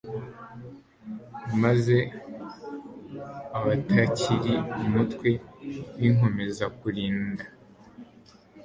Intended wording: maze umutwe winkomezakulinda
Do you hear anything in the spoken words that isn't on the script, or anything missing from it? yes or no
yes